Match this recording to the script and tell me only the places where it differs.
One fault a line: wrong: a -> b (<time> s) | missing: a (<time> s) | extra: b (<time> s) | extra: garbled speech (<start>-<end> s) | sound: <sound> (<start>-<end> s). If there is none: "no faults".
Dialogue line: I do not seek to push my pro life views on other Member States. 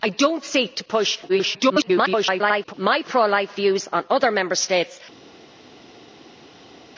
extra: garbled speech (1.3-2.7 s)